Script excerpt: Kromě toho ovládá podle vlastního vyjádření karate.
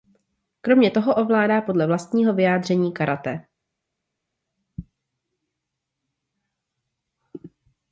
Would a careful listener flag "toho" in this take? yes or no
no